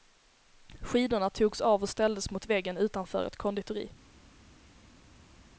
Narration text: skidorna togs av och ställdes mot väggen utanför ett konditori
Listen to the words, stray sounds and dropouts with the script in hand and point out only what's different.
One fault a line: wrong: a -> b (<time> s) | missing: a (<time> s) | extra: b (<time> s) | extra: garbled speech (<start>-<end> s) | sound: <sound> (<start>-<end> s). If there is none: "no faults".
no faults